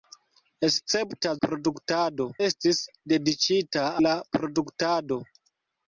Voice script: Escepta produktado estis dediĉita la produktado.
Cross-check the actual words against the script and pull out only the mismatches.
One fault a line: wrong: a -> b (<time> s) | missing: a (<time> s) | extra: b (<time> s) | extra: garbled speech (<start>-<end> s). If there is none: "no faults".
no faults